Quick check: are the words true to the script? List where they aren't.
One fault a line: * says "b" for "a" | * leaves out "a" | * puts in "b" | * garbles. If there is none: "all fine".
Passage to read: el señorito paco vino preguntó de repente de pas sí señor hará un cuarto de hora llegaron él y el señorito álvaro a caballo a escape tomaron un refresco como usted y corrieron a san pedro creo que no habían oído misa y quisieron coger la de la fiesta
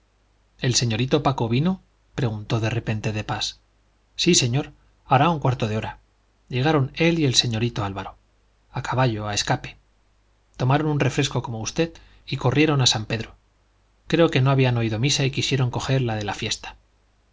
all fine